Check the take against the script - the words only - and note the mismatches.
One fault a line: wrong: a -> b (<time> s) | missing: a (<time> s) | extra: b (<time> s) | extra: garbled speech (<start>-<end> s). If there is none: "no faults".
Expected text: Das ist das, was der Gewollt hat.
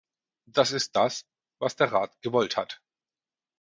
extra: Rat (1.9 s)